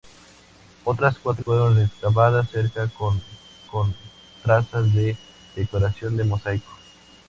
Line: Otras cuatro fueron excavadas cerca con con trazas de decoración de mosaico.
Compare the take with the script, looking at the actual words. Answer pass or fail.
pass